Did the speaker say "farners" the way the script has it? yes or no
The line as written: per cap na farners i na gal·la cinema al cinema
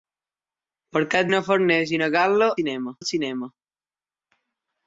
yes